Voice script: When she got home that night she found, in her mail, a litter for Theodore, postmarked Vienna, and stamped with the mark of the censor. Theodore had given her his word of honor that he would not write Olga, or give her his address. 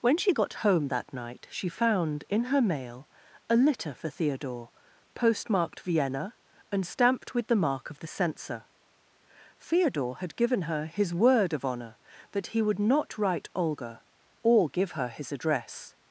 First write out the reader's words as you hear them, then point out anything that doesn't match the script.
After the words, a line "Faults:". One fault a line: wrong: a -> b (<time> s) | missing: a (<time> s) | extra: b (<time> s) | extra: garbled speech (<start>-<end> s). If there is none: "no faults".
When she got home that night she found, in her mail, a litter for Theodore, postmarked Vienna, and stamped with the mark of the censor. Theodore had given her his word of honor that he would not write Olga, or give her his address.
Faults:
no faults